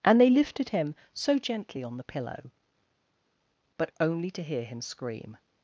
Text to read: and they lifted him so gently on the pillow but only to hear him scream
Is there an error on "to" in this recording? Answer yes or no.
no